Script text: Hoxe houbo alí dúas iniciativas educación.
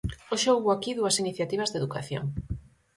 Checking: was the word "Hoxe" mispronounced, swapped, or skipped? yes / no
no